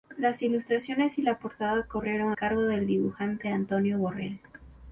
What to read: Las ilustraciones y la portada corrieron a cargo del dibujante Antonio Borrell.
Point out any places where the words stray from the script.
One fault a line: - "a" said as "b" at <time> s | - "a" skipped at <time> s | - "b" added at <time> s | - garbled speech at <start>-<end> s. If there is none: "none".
- "a" skipped at 2.4 s